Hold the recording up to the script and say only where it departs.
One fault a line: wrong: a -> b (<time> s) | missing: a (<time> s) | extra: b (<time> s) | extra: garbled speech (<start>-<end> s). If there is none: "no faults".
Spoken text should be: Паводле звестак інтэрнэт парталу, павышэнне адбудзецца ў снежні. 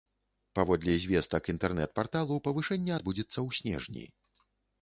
no faults